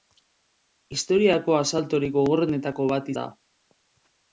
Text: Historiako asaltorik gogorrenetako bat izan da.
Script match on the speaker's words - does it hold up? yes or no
no